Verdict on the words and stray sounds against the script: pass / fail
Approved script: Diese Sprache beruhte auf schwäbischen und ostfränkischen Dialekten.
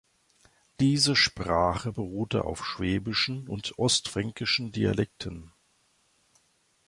pass